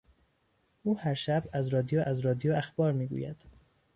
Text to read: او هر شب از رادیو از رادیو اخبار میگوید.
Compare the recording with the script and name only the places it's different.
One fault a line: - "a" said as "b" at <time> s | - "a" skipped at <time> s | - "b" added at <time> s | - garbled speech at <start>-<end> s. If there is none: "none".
none